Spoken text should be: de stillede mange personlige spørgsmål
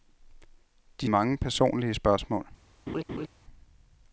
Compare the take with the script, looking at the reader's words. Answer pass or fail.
fail